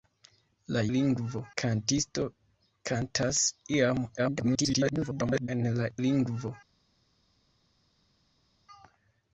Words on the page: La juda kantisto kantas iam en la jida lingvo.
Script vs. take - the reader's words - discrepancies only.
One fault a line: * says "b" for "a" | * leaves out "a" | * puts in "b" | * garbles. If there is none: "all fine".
* says "lingvo" for "juda"
* garbles
* leaves out "jida"